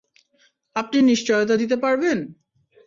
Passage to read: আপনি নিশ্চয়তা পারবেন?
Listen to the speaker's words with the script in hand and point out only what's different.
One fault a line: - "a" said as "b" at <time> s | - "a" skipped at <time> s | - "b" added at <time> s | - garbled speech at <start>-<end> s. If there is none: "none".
- "দিতে" added at 1.5 s